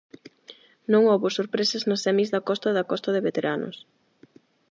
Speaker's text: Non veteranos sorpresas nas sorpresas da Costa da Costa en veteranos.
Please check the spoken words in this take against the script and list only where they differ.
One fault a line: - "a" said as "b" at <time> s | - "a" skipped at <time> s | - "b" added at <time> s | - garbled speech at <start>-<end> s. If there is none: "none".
- "veteranos" said as "houbo" at 1.1 s
- "sorpresas" said as "semis" at 2.0 s
- "en" said as "de" at 3.1 s